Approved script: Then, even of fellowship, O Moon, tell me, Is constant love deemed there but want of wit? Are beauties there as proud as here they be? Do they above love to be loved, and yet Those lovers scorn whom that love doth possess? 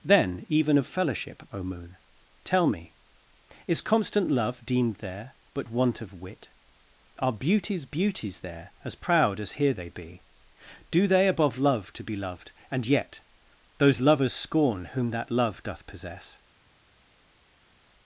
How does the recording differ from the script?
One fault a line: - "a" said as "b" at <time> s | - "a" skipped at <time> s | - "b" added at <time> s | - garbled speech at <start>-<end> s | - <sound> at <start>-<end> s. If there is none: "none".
- "beauties" added at 7.8 s